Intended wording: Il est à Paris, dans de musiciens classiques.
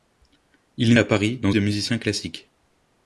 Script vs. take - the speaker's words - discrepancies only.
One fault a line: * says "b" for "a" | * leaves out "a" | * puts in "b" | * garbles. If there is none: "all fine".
all fine